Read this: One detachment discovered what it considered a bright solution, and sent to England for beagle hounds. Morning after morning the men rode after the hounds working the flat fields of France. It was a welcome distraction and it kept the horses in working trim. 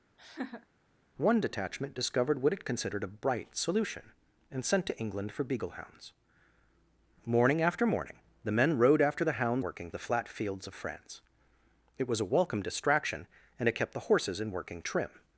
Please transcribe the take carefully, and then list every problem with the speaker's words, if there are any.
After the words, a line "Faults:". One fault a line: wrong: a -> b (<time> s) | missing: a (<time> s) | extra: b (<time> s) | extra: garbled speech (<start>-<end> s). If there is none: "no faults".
One detachment discovered what it considered a bright solution, and sent to England for beagle hounds. Morning after morning the men rode after the hounds working the flat fields of France. It was a welcome distraction and it kept the horses in working trim.
Faults:
no faults